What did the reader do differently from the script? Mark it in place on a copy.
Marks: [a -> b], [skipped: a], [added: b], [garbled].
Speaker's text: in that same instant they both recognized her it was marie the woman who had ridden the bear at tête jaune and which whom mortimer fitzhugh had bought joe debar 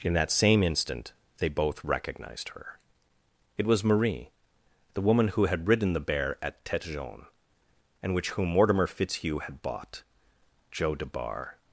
in that same instant they both recognized her it was marie the woman who had ridden the bear at tête jaune and which whom mortimer fitzhugh had bought joe debar